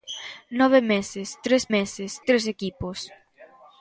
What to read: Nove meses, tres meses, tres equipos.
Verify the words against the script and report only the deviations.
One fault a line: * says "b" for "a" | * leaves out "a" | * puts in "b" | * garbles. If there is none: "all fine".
all fine